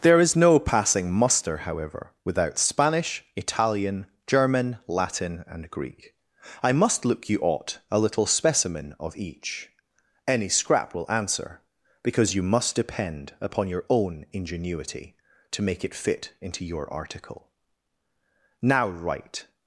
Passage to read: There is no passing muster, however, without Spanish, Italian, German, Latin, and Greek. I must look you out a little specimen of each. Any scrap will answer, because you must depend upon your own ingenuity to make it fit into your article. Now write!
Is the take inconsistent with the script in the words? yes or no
yes